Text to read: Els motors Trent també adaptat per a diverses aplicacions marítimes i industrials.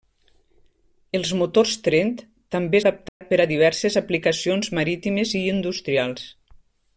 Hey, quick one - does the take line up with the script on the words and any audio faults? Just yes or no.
no